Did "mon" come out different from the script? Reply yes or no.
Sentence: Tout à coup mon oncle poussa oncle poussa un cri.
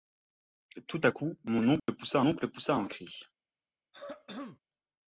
no